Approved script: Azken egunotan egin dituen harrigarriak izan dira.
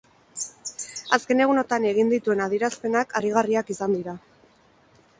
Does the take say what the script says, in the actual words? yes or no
no